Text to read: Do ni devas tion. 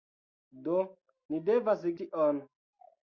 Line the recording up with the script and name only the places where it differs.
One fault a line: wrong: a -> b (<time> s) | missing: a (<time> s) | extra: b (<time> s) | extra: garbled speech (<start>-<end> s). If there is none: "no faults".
no faults